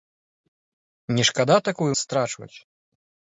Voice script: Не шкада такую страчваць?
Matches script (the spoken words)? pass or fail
pass